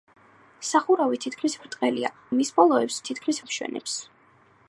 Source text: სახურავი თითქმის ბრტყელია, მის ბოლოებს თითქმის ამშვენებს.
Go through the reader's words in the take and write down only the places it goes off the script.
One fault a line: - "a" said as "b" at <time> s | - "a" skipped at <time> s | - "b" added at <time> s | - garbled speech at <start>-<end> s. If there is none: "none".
none